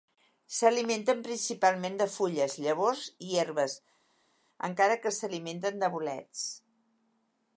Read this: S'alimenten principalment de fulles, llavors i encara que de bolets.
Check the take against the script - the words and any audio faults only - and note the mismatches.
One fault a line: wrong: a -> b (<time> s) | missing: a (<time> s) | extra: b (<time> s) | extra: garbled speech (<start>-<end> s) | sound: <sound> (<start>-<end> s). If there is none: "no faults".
extra: herbes (3.4 s)
extra: s'alimenten (5.2 s)